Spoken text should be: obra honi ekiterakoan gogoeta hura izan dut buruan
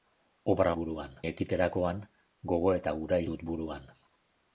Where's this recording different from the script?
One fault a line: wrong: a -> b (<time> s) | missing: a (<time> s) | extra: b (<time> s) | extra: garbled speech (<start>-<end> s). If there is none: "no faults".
wrong: honi -> buruan (0.8 s)
missing: izan (3.2 s)